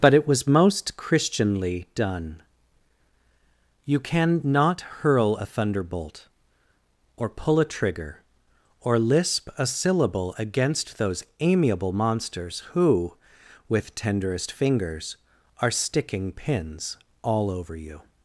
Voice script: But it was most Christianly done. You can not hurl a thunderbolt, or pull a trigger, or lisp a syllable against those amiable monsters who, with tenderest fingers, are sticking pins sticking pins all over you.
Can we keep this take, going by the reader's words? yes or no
no